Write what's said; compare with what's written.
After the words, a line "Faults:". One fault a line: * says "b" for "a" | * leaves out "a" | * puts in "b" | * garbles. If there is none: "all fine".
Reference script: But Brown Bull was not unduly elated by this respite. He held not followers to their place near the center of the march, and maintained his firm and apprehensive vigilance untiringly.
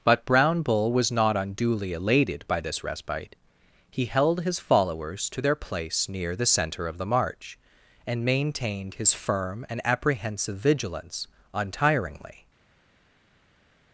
But Brown Bull was not unduly elated by this respite. He held his followers to their place near the center of the march, and maintained his firm and apprehensive vigilance untiringly.
Faults:
* says "his" for "not"